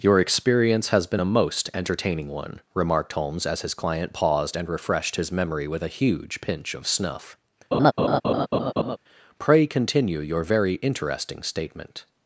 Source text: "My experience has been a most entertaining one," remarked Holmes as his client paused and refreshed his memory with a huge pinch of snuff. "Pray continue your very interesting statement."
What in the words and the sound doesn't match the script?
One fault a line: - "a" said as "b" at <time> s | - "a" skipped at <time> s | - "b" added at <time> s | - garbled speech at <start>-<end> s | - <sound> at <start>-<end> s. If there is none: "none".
- "My" said as "Your" at 0.0 s
- laugh at 7.7-9.0 s